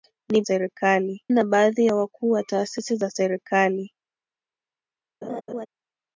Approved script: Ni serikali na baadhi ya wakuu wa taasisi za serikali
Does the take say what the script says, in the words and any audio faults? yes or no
no